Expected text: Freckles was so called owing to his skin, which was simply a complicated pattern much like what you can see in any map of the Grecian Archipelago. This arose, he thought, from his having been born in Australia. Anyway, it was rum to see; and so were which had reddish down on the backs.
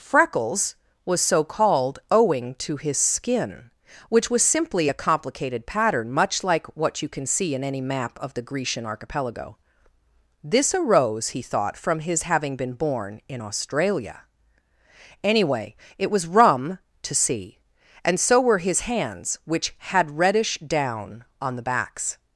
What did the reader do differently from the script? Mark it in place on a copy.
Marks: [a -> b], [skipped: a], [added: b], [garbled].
Freckles was so called owing to his skin, which was simply a complicated pattern much like what you can see in any map of the Grecian Archipelago. This arose, he thought, from his having been born in Australia. Anyway, it was rum to see; and so were [added: his hands] which had reddish down on the backs.